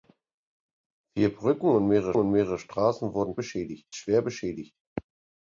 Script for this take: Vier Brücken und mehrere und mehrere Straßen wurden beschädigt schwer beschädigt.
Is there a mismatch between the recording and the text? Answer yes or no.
no